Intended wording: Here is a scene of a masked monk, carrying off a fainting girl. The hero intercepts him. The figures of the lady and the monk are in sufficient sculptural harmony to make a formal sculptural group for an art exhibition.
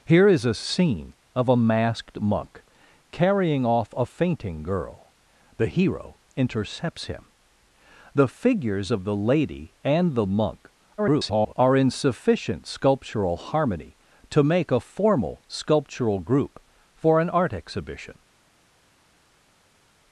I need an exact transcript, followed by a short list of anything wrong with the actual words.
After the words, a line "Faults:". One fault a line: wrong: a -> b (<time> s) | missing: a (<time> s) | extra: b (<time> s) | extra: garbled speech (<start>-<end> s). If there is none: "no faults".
Here is a scene of a masked monk, carrying off a fainting girl. The hero intercepts him. The figures of the lady and the monk [garbled] are in sufficient sculptural harmony to make a formal sculptural group for an art exhibition.
Faults:
extra: garbled speech (11.0-11.5 s)